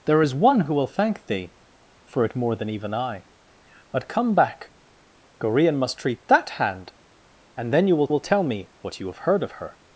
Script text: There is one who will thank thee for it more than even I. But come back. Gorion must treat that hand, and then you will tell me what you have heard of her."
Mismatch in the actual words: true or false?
true